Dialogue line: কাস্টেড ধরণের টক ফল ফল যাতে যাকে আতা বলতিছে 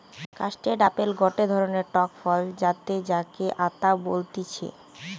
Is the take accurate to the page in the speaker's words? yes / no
no